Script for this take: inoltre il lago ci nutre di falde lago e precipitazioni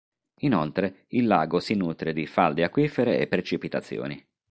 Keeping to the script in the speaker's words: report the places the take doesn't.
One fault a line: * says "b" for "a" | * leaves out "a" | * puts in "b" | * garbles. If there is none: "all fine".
* says "si" for "ci"
* says "acquifere" for "lago"